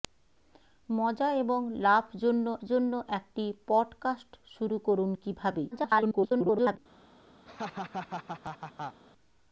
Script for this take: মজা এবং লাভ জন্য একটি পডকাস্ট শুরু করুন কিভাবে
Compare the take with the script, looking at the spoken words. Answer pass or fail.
fail